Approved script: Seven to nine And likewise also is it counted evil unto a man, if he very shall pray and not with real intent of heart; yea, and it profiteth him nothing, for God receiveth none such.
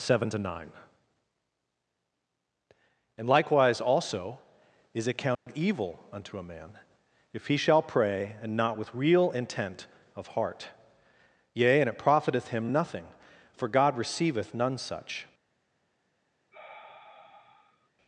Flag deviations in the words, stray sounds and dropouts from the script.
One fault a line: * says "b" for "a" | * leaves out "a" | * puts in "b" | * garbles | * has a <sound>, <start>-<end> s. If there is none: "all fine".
* has a dropout, 5.3-5.5 s
* leaves out "very"
* has a sigh, 16.5-17.9 s